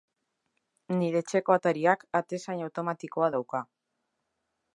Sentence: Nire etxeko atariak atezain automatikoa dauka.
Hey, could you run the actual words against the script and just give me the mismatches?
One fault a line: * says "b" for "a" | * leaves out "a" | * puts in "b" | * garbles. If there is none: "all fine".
all fine